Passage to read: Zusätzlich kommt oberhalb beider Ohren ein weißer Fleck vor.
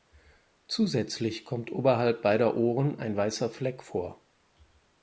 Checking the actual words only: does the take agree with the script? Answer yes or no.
yes